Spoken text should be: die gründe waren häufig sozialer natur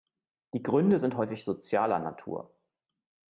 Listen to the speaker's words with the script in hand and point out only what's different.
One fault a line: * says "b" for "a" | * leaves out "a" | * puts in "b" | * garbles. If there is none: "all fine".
* says "sind" for "waren"